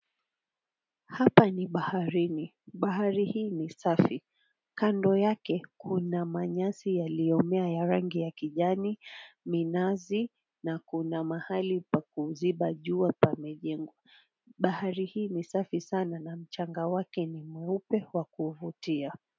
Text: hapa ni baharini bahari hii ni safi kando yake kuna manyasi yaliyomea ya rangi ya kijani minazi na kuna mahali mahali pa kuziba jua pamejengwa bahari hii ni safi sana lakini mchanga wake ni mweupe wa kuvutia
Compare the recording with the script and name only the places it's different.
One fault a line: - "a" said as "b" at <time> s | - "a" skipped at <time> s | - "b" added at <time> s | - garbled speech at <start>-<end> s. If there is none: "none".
- "mahali" skipped at 11.8 s
- "lakini" said as "na" at 16.2 s